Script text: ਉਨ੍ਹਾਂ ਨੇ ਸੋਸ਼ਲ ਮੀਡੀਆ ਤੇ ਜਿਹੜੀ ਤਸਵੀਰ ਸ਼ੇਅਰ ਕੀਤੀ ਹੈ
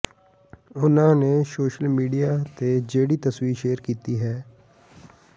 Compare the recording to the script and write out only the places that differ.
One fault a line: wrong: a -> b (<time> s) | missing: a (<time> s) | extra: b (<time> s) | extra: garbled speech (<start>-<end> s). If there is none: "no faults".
no faults